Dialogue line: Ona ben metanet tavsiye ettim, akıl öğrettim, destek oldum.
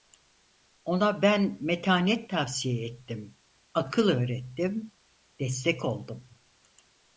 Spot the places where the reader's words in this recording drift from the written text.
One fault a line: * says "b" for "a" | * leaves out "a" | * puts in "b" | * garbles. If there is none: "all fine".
all fine